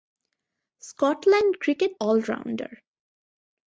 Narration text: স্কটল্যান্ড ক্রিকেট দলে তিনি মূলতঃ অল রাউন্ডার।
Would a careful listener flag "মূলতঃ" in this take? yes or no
yes